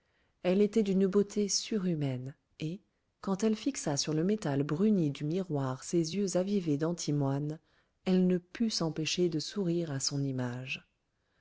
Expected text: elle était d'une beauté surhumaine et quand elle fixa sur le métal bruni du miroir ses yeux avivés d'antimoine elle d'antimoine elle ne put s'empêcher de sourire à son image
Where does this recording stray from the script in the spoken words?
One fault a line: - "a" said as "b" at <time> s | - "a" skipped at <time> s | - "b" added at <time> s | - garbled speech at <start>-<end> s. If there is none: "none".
- "d'antimoine elle" skipped at 8.3 s